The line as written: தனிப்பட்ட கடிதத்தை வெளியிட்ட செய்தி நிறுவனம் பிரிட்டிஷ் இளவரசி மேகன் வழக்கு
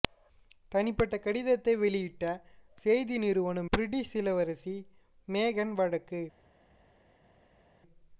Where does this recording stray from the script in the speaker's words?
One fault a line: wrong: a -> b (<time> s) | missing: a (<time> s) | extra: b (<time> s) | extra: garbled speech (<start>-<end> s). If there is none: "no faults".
no faults